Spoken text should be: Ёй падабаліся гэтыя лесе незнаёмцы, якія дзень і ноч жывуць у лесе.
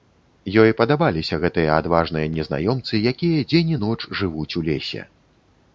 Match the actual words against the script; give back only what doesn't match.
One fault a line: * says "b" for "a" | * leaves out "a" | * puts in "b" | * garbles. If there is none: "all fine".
* says "адважныя" for "лесе"